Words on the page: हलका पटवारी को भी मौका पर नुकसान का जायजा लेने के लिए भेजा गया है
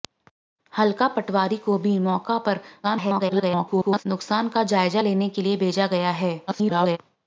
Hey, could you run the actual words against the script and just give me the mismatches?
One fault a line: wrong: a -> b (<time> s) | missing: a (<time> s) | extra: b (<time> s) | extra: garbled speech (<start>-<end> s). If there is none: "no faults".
extra: garbled speech (2.8-4.0 s)
extra: garbled speech (6.5-7.0 s)